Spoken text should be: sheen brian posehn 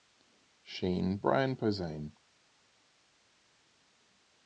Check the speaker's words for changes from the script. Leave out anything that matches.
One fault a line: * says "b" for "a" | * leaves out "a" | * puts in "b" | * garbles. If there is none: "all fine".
all fine